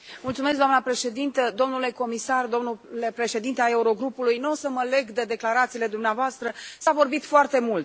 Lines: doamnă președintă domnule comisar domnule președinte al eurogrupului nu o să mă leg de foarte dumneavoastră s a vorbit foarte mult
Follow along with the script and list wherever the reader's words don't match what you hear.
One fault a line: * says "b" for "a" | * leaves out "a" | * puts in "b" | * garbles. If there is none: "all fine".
* says "declarațiile" for "foarte"